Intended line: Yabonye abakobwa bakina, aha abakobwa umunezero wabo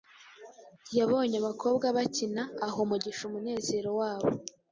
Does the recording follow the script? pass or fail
fail